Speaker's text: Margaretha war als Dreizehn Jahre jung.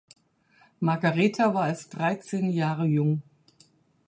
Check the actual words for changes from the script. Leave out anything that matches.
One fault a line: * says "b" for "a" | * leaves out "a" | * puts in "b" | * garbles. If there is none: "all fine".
all fine